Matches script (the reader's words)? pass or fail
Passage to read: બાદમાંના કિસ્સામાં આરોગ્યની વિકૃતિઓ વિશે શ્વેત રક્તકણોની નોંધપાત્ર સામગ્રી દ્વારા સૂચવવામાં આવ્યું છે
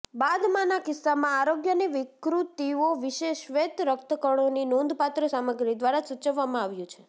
pass